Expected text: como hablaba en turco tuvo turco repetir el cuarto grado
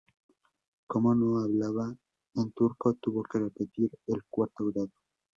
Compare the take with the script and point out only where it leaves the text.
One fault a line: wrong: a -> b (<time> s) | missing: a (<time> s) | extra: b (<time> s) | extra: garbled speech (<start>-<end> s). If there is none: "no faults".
extra: no (1.1 s)
wrong: turco -> que (3.2 s)